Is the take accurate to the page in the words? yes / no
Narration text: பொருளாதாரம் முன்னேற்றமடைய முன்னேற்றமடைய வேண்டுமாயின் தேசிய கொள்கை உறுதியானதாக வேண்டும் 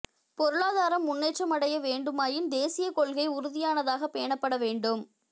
no